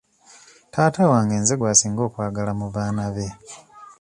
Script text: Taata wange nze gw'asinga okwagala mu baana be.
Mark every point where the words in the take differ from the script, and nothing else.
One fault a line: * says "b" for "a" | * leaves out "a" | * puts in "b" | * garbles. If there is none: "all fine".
all fine